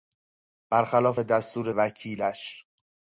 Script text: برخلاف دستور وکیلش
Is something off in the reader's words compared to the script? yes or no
no